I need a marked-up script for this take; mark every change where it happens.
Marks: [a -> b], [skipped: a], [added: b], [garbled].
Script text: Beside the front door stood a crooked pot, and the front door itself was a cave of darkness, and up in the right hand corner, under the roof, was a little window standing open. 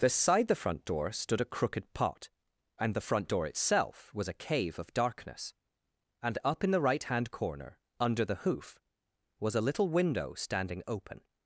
Beside the front door stood a crooked pot, and the front door itself was a cave of darkness, and up in the right hand corner, under the [roof, -> hoof] was a little window standing open.